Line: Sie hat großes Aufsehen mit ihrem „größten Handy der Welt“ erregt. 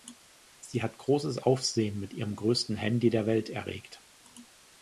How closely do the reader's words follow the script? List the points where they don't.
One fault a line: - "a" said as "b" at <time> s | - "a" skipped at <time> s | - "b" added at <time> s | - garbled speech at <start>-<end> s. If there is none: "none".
none